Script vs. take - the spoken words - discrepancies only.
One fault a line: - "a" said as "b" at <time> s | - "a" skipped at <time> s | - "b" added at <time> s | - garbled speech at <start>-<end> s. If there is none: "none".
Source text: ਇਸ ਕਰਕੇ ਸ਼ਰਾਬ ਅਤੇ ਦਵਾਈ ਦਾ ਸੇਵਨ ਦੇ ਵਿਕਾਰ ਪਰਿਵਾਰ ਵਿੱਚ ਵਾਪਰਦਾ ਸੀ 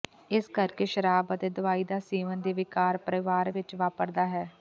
- "ਸੀ" said as "ਹੈ" at 4.3 s